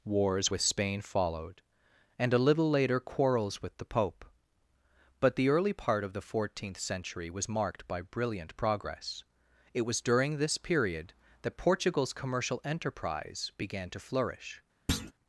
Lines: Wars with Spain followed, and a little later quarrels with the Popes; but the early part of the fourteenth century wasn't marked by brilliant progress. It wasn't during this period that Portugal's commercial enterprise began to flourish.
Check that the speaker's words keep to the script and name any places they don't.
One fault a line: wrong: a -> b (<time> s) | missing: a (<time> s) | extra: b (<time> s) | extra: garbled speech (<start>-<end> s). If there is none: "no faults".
wrong: Popes -> Pope (3.8 s)
wrong: wasn't -> was (7.3 s)
wrong: wasn't -> was (9.8 s)